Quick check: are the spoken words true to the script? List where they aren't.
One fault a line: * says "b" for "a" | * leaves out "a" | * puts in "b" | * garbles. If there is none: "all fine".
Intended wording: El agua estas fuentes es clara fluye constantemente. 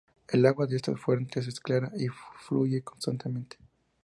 * puts in "de"
* puts in "y"